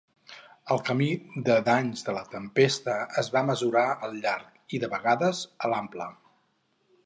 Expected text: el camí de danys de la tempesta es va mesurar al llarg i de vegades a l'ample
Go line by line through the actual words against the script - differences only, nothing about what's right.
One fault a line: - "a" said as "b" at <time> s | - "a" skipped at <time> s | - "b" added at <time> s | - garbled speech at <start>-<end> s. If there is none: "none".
none